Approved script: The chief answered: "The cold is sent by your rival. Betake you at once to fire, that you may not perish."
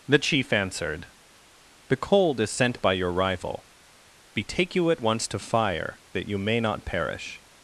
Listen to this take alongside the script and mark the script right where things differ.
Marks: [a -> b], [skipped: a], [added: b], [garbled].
The chief answered: "The cold is sent by your rival. Betake you at once to fire, that you may not perish."